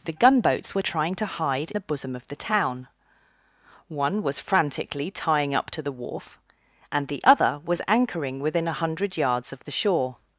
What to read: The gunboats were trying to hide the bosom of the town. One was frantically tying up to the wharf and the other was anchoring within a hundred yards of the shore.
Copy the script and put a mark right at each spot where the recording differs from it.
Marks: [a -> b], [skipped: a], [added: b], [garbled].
The gunboats were trying to hide the bosom of the town. One was frantically tying up to the wharf and the other was anchoring within a hundred yards of the shore.